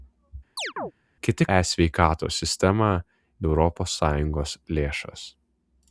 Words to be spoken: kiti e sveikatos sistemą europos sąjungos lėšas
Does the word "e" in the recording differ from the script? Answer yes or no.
no